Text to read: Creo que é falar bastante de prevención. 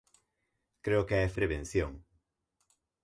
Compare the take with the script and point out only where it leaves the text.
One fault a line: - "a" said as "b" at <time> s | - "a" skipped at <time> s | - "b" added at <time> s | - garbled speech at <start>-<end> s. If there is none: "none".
- "falar bastante de" skipped at 1.3 s